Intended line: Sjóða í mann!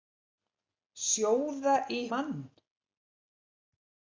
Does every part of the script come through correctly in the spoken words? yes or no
yes